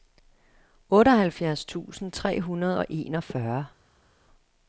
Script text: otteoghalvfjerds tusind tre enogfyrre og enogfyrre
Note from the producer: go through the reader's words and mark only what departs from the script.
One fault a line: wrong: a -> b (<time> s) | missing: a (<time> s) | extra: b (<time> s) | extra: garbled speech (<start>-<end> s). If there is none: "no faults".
wrong: enogfyrre -> hundrede (2.4 s)